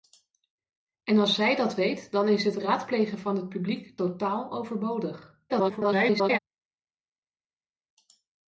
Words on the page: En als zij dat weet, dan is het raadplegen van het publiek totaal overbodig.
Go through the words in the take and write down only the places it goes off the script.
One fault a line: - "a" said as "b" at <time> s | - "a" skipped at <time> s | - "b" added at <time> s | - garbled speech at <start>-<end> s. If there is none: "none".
- garbled speech at 5.5-6.4 s